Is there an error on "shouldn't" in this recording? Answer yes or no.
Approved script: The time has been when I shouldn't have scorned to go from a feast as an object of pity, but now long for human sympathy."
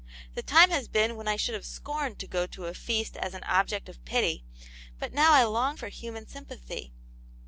yes